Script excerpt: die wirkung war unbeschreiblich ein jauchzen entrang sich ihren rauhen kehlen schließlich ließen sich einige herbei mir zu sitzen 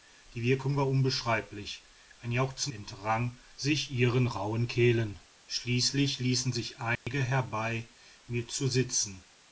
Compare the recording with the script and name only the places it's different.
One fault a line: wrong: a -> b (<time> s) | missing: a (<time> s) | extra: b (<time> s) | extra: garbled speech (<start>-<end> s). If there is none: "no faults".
no faults